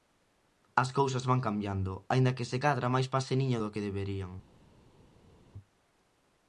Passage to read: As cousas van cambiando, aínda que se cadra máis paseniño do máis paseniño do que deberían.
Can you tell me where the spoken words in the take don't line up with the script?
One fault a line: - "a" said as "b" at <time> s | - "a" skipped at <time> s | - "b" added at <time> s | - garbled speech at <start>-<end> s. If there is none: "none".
- "máis paseniño do" skipped at 3.7 s